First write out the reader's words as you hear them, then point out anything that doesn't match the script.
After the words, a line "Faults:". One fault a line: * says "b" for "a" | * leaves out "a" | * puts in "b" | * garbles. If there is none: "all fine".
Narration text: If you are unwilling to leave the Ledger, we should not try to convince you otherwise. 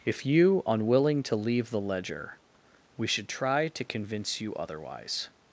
If you unwilling to leave the Ledger, we should try to convince you otherwise.
Faults:
* leaves out "are"
* leaves out "not"